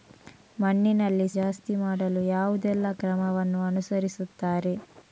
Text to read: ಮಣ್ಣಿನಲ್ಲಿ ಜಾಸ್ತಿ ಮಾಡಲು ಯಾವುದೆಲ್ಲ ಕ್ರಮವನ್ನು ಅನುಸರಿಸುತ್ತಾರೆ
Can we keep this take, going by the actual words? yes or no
yes